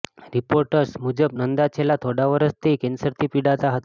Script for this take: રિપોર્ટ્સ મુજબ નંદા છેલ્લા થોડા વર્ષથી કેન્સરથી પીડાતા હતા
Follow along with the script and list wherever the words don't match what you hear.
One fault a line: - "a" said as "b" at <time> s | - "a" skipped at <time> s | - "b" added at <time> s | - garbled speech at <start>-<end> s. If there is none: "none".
none